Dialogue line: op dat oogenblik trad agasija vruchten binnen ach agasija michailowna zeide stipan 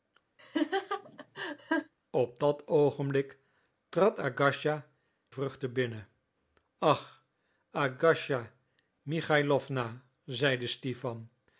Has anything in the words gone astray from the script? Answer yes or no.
no